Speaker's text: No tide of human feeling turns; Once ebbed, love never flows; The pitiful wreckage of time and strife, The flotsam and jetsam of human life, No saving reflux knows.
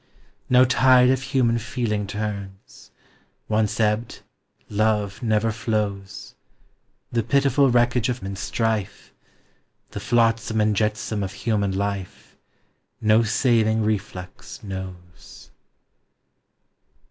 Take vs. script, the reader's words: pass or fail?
fail